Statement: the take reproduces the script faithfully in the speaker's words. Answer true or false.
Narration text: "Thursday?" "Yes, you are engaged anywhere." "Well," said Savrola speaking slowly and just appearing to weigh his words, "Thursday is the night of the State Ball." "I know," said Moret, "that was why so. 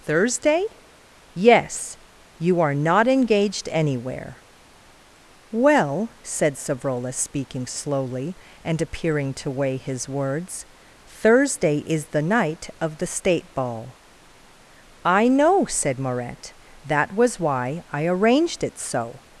false